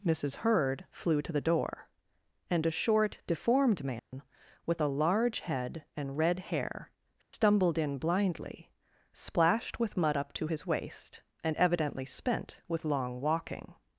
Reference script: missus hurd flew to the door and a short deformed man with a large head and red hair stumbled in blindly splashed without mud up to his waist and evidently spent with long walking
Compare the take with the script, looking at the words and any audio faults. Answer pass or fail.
fail